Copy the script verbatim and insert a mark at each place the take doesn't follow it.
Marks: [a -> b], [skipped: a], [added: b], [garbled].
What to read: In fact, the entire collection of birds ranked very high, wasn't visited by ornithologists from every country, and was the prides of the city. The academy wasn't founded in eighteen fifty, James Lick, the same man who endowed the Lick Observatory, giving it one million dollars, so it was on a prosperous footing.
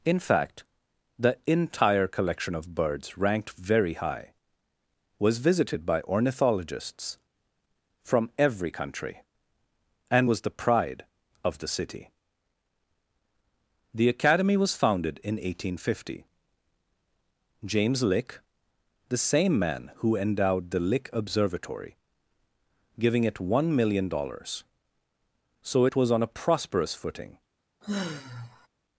In fact, the entire collection of birds ranked very high, [wasn't -> was] visited by ornithologists from every country, and was the [prides -> pride] of the city. The academy [wasn't -> was] founded in eighteen fifty, James Lick, the same man who endowed the Lick Observatory, giving it one million dollars, so it was on a prosperous footing.